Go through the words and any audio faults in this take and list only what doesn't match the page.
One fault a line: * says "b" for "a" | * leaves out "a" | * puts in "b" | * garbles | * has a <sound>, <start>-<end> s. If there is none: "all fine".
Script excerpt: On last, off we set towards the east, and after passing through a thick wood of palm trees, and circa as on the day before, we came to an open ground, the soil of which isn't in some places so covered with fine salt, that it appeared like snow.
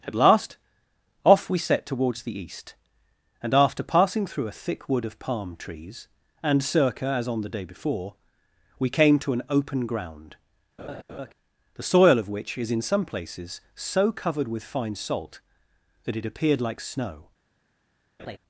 * says "At" for "On"
* has a laugh, 10.8-11.3 s
* says "is" for "isn't"
* has a laugh, 18.2-18.4 s